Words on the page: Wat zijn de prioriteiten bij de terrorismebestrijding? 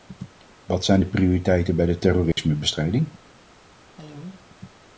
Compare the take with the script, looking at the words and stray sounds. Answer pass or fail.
fail